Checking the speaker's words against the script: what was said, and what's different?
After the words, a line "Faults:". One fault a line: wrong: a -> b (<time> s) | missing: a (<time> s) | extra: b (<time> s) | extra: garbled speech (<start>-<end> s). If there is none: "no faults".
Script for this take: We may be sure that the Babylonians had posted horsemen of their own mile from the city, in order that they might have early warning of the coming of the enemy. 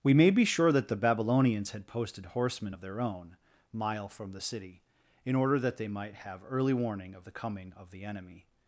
We may be sure that the Babylonians had posted horsemen of their own mile from the city, in order that they might have early warning of the coming of the enemy.
Faults:
no faults